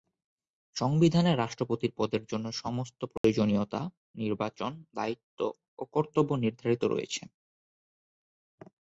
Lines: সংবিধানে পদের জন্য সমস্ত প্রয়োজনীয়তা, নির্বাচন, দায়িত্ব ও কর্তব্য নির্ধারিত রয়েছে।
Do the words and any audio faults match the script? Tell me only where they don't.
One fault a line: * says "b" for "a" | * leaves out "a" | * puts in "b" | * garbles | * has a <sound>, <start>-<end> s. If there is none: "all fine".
* puts in "রাষ্ট্রপতির"
* has a dropout, 3.2-3.2 s